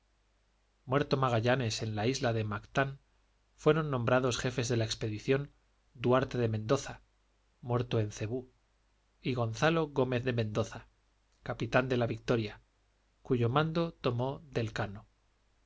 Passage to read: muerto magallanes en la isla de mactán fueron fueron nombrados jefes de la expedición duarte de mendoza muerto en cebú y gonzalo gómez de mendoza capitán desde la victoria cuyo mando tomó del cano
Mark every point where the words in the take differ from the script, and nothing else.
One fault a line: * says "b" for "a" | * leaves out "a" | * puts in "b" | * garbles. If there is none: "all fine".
* leaves out "fueron"
* says "de" for "desde"